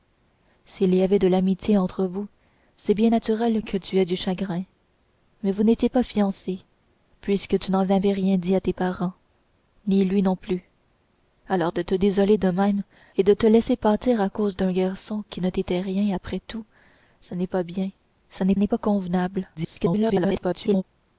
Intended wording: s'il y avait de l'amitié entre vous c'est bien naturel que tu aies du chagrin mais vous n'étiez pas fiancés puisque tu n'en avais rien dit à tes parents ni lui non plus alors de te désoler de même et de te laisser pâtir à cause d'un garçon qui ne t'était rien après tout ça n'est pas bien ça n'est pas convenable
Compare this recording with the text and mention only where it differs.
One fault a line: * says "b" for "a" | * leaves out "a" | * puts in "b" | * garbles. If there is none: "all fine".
* puts in "n'est"
* garbles